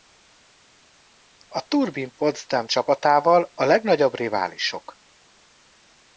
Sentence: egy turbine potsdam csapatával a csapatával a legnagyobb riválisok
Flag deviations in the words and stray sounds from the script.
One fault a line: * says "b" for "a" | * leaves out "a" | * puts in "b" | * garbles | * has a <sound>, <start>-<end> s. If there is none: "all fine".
* says "a" for "egy"
* leaves out "csapatával a"